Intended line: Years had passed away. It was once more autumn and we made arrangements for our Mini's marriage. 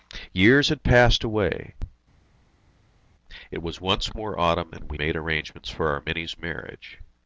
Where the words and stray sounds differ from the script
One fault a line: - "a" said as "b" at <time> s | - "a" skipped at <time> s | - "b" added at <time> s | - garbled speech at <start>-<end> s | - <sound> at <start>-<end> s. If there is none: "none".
none